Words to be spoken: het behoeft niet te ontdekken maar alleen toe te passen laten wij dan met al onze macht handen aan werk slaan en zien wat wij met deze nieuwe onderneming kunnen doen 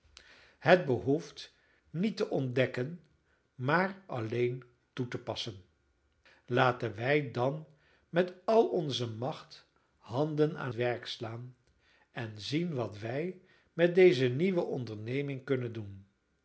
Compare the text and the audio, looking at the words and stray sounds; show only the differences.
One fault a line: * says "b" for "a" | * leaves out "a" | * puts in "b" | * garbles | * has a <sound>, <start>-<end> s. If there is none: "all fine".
all fine